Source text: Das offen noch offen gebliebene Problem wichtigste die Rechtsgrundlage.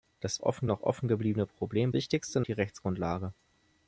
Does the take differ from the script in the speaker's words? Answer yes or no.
no